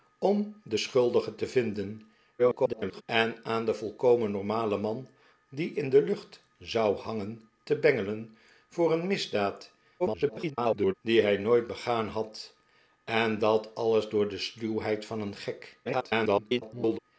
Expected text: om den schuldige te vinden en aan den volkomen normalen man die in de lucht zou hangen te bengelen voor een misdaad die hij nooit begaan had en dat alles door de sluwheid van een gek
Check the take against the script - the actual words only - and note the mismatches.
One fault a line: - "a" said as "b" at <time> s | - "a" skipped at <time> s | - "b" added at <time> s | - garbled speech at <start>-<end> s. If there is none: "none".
- garbled speech at 2.4-3.0 s
- garbled speech at 10.0-10.9 s
- garbled speech at 15.8-17.0 s